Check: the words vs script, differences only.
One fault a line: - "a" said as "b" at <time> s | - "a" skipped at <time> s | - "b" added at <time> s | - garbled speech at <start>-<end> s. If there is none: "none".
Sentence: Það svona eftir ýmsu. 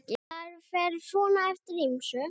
- "fer" added at 0.7 s